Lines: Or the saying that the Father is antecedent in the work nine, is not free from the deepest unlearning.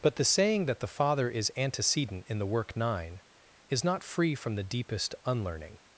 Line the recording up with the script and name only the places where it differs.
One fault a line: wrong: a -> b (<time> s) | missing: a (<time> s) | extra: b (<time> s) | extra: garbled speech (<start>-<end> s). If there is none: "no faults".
wrong: Or -> But (0.0 s)